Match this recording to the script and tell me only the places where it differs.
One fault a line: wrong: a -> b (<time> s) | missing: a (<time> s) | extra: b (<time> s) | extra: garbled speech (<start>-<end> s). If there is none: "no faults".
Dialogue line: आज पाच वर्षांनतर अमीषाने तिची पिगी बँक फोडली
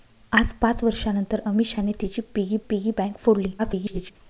extra: पिगी (2.7 s)
extra: garbled speech (3.6-4.1 s)